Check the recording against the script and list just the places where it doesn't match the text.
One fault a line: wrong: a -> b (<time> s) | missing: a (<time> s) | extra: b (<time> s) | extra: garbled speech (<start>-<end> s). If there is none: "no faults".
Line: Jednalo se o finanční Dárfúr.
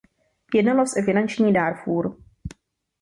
no faults